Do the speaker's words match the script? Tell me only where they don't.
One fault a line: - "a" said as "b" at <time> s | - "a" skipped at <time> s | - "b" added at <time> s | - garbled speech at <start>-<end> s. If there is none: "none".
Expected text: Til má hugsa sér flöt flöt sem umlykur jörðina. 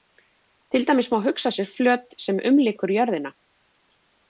- "dæmis" added at 0.9 s
- "flöt" skipped at 2.2 s